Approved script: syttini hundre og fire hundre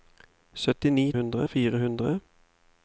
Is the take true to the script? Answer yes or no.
yes